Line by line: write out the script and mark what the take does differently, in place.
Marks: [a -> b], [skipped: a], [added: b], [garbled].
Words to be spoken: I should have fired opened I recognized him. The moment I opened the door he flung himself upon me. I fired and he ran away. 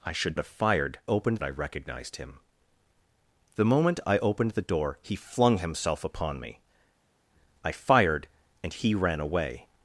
I should have fired opened I recognized him. The moment I opened the door he flung himself upon me. I fired and he ran away.